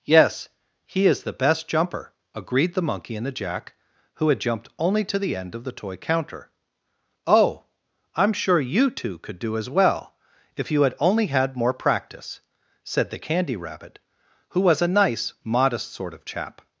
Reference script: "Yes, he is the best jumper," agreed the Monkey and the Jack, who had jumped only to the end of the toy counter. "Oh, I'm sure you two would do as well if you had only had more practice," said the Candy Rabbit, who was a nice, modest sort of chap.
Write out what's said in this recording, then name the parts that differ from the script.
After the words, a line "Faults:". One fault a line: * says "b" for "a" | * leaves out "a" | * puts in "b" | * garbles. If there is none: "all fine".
"Yes, he is the best jumper," agreed the Monkey and the Jack, who had jumped only to the end of the toy counter. "Oh, I'm sure you two could do as well if you had only had more practice," said the Candy Rabbit, who was a nice, modest sort of chap.
Faults:
* says "could" for "would"